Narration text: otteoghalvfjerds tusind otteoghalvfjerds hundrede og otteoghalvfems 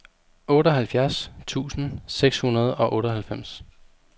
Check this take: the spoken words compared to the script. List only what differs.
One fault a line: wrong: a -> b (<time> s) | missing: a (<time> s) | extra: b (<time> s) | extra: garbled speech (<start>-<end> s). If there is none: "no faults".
wrong: otteoghalvfjerds -> seks (2.1 s)